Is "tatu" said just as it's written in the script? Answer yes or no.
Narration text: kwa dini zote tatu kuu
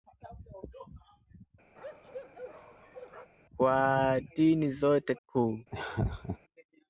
no